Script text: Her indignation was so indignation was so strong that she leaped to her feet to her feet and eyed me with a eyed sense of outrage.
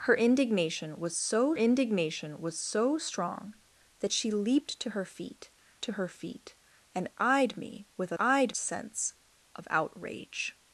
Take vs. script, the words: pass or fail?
pass